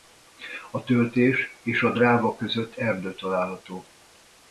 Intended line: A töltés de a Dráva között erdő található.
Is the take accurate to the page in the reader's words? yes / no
no